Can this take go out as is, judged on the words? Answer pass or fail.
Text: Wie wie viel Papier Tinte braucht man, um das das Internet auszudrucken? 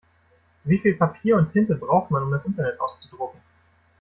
fail